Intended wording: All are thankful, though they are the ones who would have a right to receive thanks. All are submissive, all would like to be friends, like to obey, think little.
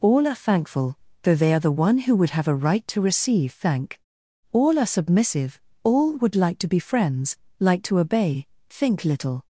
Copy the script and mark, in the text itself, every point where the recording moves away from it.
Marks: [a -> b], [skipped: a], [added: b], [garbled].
All are thankful, though they are the [ones -> one] who would have a right to receive [thanks. -> thank] All are submissive, all would like to be friends, like to obey, think little.